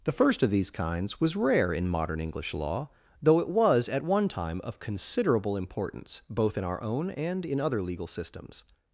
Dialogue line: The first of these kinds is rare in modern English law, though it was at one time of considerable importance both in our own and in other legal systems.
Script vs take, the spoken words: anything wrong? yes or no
yes